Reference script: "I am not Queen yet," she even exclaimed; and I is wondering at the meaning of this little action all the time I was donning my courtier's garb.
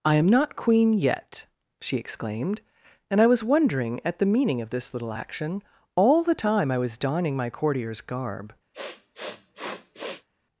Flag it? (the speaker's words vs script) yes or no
yes